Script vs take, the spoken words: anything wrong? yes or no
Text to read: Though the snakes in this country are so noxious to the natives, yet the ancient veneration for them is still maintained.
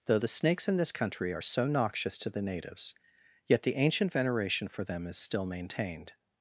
no